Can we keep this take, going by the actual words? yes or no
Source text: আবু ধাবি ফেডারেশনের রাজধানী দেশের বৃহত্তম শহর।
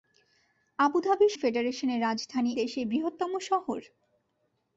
yes